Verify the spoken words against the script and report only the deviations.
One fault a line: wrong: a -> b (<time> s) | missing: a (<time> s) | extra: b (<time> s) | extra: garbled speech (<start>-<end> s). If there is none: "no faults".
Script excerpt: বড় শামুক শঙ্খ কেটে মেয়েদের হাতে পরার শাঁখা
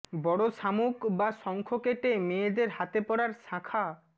extra: বা (1.2 s)